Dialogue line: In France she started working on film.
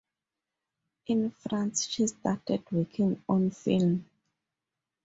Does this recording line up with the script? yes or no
yes